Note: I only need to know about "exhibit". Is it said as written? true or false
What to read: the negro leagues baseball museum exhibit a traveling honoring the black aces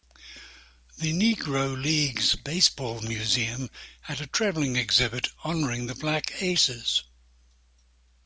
false